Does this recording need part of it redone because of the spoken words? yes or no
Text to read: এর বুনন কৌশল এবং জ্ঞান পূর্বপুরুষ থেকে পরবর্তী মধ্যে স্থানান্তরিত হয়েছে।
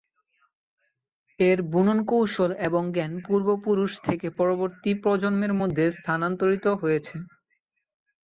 yes